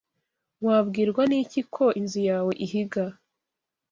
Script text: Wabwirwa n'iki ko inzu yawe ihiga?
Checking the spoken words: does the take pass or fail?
pass